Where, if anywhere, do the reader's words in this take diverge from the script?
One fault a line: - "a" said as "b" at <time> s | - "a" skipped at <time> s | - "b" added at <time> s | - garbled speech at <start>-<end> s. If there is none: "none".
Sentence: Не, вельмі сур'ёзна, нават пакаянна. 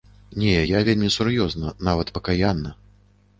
- "я" added at 0.7 s